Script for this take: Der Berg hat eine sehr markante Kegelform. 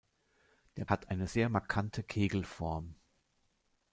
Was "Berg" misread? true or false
true